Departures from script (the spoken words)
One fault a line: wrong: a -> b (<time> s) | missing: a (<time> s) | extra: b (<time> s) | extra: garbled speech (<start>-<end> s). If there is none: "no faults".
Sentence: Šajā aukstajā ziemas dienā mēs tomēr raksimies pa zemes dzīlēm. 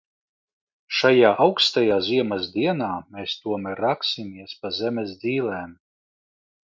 no faults